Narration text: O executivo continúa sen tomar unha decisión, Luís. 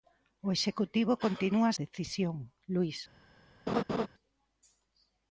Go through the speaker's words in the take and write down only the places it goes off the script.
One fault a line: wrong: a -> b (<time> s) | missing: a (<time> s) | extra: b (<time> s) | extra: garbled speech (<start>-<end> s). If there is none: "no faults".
missing: sen tomar unha (1.7 s)